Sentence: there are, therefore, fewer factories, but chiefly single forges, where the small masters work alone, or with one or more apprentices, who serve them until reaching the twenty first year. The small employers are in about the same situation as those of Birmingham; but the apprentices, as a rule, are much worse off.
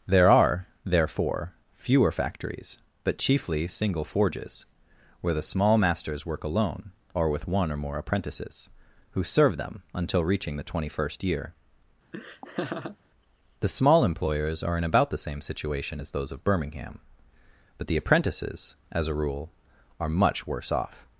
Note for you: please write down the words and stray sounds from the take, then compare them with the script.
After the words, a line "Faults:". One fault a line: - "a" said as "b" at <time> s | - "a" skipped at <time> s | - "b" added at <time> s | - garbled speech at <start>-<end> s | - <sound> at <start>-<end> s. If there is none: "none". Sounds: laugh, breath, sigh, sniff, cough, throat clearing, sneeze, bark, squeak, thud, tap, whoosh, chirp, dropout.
there are, therefore, fewer factories, but chiefly single forges, where the small masters work alone, or with one or more apprentices, who serve them until reaching the twenty first year. The small employers are in about the same situation as those of Birmingham; but the apprentices, as a rule, are much worse off.
Faults:
- laugh at 12.1-13.0 s